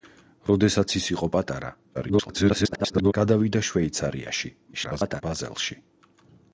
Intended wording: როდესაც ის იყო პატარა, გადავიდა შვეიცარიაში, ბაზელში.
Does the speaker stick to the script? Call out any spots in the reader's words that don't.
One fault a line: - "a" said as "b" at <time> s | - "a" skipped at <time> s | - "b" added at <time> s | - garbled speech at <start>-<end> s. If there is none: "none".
- garbled speech at 1.9-3.1 s
- garbled speech at 4.7-5.2 s